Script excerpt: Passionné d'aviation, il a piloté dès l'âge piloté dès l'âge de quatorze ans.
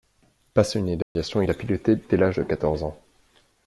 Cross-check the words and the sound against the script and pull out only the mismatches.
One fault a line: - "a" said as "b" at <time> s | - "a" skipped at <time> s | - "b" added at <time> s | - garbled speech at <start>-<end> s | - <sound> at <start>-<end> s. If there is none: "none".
- dropout at 1.0-1.2 s
- "piloté dès l'âge" skipped at 2.4 s